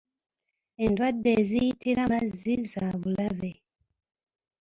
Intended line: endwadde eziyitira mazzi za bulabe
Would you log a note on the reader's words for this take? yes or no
no